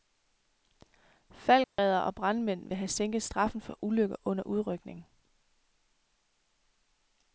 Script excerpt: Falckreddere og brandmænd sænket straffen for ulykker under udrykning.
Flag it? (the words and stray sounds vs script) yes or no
yes